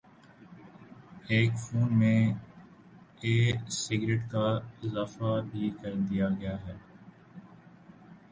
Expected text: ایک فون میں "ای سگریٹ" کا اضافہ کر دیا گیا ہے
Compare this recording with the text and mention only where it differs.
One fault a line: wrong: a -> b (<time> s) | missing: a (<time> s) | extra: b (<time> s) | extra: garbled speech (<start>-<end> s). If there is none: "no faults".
extra: بھی (5.5 s)